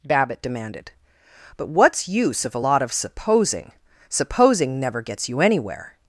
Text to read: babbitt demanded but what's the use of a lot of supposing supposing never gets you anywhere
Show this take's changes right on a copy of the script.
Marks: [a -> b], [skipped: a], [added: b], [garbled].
babbitt demanded but what's [skipped: the] use of a lot of supposing supposing never gets you anywhere